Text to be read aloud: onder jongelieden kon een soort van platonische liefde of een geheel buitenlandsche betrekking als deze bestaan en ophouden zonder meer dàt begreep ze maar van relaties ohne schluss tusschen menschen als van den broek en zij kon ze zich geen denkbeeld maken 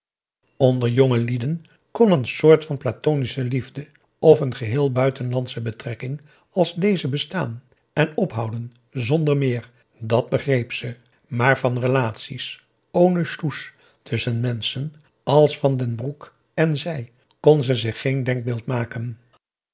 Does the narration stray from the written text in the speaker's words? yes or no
no